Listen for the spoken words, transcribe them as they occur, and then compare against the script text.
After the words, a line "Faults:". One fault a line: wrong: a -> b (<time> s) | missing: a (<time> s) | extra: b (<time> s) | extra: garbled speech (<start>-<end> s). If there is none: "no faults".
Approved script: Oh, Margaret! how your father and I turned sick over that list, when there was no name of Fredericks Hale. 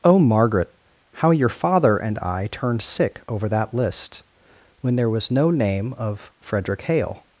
Oh, Margaret! how your father and I turned sick over that list, when there was no name of Frederick Hale.
Faults:
wrong: Fredericks -> Frederick (6.4 s)